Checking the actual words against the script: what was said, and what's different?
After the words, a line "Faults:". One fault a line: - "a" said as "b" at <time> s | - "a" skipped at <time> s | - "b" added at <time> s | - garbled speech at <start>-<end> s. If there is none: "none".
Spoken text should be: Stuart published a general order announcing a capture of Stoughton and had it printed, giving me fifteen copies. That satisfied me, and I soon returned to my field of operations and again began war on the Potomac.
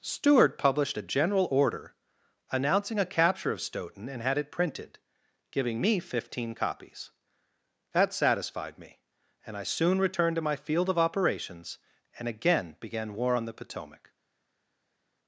Stuart published a general order announcing a capture of Stoughton and had it printed, giving me fifteen copies. That satisfied me, and I soon returned to my field of operations and again began war on the Potomac.
Faults:
none